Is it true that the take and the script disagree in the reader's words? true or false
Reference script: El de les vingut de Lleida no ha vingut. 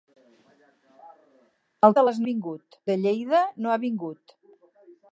false